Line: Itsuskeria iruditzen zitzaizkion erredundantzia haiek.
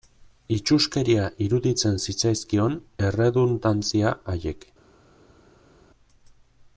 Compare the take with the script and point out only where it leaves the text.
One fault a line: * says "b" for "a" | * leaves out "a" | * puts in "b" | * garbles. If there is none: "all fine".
all fine